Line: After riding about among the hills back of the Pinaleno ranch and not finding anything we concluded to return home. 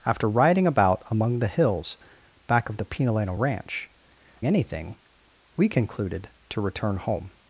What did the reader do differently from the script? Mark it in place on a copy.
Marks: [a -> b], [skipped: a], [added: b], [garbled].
After riding about among the hills back of the Pinaleno ranch [skipped: and not finding] anything we concluded to return home.